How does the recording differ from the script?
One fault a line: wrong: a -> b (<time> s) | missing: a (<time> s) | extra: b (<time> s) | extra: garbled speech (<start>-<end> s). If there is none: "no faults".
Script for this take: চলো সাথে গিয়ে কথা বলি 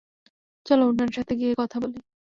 extra: উনার (0.9 s)